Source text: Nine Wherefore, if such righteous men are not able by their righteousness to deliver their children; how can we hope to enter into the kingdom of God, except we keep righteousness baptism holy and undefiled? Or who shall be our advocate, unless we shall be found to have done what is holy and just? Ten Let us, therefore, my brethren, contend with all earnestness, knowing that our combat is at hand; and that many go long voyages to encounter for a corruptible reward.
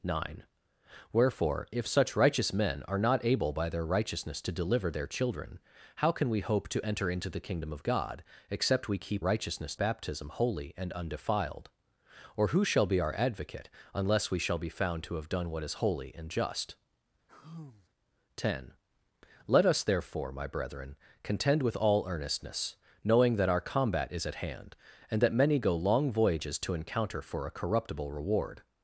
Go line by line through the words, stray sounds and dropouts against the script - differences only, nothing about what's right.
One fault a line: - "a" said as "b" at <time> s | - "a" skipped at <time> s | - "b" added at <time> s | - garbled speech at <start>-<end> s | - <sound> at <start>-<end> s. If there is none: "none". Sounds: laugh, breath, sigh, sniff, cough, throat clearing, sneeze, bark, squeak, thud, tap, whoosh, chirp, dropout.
- sigh at 17.3-17.9 s